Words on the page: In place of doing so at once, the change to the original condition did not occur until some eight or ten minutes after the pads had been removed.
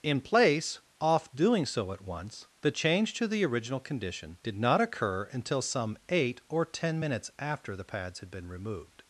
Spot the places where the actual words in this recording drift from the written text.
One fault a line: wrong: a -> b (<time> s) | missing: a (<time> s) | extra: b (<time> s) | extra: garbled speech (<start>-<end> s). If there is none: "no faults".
wrong: of -> off (1.0 s)